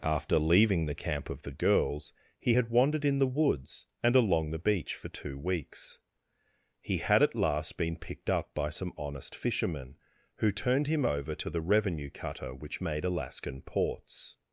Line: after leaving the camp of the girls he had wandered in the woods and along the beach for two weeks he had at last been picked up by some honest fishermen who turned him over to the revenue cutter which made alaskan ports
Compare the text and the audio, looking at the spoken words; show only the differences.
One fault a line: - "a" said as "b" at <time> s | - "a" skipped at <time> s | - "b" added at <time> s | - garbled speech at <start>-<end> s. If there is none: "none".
none